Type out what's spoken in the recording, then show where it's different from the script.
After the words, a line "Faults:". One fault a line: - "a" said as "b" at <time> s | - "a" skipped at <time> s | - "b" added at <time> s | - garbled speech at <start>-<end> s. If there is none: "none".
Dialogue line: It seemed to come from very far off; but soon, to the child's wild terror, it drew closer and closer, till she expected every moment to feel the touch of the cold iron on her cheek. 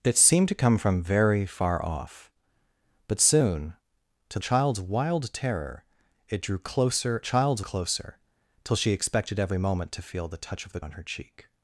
It seemed to come from very far off; but soon, to child's wild terror, it drew closer child's closer, till she expected every moment to feel the touch of the on her cheek.
Faults:
- "the" skipped at 4.4 s
- "and" said as "child's" at 7.2 s
- "cold iron" skipped at 10.8 s